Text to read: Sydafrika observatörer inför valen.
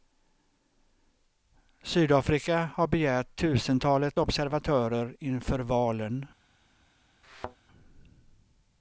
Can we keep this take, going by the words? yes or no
no